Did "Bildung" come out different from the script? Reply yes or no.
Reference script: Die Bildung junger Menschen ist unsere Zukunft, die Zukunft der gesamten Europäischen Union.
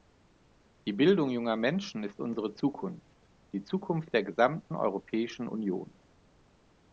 no